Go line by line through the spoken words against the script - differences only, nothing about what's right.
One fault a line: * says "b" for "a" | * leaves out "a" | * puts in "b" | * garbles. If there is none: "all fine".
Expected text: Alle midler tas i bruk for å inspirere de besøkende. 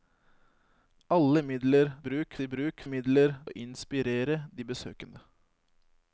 * says "bruk" for "tas"
* says "midler" for "for"